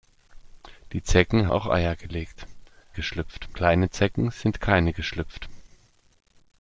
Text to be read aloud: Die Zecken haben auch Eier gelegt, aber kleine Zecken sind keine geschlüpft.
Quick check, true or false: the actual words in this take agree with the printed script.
false